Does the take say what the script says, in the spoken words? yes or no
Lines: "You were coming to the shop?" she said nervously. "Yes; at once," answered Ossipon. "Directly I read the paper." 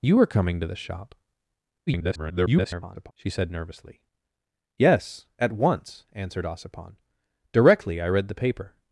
no